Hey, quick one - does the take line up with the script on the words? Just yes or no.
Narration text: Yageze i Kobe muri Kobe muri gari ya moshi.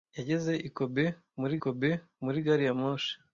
yes